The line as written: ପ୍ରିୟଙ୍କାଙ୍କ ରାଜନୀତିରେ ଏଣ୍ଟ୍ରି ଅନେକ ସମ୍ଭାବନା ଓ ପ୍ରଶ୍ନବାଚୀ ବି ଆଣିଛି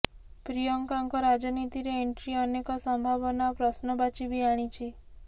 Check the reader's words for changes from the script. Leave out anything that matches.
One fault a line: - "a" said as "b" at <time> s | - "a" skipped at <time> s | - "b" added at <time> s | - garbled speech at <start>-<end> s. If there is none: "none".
none